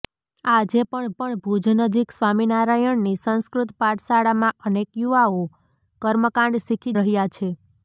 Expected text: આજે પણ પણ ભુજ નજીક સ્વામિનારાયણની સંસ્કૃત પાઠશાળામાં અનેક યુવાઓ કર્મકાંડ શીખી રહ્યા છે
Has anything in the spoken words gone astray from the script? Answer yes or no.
no